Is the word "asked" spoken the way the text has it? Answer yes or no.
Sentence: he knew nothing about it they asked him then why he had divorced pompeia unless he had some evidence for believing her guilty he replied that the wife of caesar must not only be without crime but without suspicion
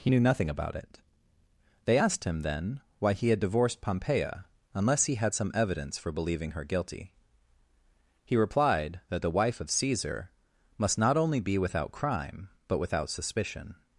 yes